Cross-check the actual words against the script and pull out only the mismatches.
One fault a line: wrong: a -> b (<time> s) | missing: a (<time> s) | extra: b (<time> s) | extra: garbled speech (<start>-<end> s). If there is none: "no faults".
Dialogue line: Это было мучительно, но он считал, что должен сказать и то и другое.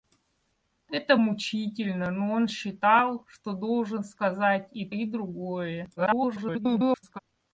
missing: было (1.1 s)
missing: то (4.9 s)
extra: garbled speech (6.0-7.2 s)